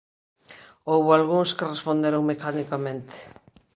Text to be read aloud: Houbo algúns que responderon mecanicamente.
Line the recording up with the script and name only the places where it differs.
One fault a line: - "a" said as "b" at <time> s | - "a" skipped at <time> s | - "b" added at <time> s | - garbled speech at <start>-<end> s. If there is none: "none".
none